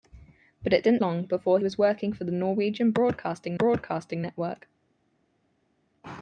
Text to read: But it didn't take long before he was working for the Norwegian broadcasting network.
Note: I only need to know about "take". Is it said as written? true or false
false